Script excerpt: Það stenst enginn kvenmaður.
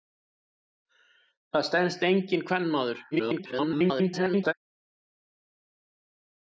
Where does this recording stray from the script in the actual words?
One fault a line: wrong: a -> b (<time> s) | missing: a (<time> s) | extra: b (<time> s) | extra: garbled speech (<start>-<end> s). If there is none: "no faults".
extra: garbled speech (3.1-4.5 s)